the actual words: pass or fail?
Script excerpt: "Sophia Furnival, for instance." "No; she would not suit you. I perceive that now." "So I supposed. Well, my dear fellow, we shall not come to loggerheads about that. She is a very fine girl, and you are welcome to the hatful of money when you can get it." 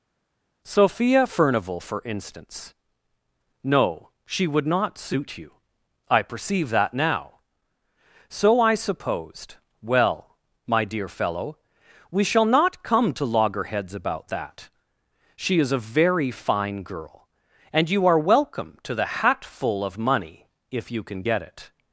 fail